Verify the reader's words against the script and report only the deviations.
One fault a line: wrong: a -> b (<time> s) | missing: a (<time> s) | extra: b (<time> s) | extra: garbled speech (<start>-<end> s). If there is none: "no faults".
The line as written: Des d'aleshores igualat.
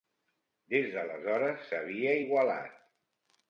extra: s'havia (1.7 s)